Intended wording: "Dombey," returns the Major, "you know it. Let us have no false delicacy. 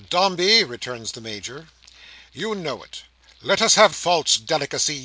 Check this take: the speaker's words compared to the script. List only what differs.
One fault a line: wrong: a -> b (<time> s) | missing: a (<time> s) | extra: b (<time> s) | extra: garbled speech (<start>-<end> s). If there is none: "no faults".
missing: no (3.9 s)